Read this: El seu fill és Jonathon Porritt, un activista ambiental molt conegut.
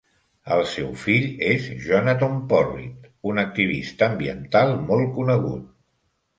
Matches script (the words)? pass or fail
pass